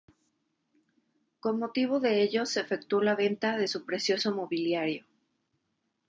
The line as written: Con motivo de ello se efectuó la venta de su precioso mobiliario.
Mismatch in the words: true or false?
false